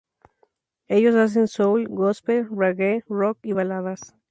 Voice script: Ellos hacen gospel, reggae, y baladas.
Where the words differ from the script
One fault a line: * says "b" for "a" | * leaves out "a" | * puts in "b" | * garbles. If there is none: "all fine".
* puts in "soul"
* puts in "rock"